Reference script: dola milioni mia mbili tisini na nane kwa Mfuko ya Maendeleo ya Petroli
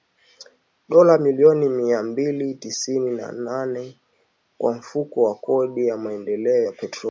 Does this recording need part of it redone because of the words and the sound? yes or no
yes